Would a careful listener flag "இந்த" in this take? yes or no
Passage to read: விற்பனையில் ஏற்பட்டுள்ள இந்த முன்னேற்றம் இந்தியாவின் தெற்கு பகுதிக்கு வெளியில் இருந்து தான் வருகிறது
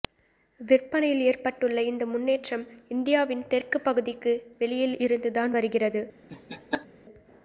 no